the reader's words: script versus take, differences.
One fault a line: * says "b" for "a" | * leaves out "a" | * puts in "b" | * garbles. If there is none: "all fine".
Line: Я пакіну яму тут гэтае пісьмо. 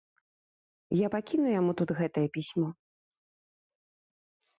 all fine